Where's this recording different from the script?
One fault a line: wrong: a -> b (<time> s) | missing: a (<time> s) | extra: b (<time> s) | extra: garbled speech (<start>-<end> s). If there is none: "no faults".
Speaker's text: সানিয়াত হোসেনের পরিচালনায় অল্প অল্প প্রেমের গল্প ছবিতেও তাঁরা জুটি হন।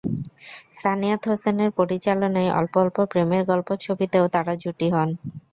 no faults